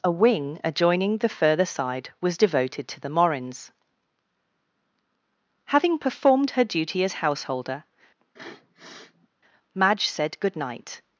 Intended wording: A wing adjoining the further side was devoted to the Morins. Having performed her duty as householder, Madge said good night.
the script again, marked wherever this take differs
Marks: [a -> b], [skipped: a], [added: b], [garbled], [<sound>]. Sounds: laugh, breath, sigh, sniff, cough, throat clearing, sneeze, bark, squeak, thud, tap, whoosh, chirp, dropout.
A wing adjoining the further side was devoted to the Morins. Having performed her duty as householder, [sniff] Madge said good night.